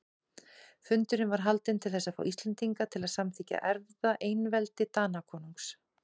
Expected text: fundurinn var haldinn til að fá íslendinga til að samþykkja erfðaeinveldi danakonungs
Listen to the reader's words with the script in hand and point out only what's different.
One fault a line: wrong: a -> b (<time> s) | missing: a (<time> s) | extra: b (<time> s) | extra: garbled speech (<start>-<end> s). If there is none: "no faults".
extra: þess (1.9 s)